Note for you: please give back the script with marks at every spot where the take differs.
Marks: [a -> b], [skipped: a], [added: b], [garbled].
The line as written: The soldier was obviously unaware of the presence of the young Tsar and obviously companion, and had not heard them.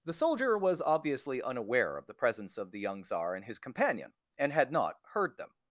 The soldier was obviously unaware of the presence of the young Tsar and [obviously -> his] companion, and had not heard them.